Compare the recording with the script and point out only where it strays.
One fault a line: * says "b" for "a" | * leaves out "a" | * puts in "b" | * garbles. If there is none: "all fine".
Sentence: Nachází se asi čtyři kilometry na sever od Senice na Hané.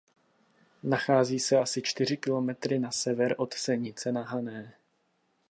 all fine